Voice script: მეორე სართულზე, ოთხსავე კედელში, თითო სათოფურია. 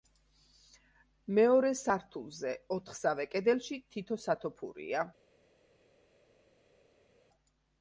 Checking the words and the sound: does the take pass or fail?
pass